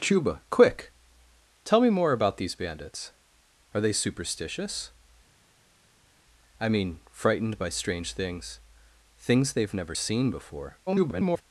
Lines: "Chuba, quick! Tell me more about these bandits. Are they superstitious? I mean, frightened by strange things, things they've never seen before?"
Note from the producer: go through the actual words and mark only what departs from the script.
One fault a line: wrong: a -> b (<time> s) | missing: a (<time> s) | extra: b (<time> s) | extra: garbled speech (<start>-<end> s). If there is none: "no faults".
extra: garbled speech (10.9-11.4 s)